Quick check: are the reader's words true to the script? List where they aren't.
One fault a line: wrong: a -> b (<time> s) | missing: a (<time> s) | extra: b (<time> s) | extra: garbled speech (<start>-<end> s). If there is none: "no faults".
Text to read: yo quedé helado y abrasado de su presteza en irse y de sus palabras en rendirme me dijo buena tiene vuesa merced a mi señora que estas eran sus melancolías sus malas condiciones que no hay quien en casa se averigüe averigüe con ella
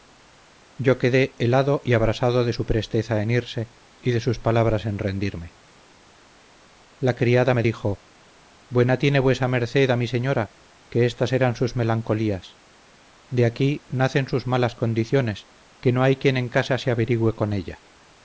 extra: la criada (7.0 s)
extra: de aquí nacen (13.3 s)
missing: averigüe (17.3 s)